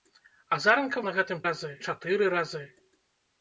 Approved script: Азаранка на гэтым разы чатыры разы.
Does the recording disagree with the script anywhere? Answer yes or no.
no